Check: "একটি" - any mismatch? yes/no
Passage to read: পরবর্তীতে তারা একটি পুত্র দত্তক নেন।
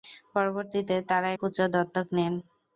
yes